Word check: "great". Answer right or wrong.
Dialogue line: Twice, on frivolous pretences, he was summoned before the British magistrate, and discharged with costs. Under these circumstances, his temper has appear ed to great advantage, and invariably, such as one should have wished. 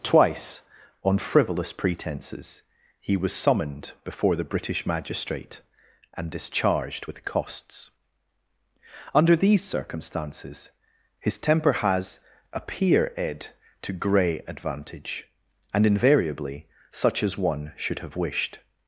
wrong